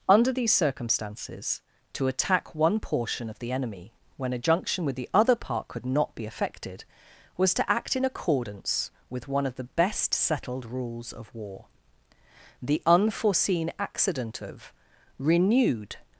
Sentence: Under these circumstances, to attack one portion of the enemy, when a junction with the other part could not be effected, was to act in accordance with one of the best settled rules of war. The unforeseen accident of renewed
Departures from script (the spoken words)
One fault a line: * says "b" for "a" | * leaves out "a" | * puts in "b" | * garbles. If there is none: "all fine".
all fine